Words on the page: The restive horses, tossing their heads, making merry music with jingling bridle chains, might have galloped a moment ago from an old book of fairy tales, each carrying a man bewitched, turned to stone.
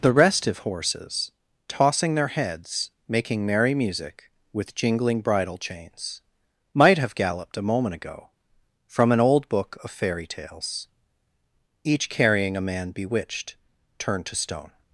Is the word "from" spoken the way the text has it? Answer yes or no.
yes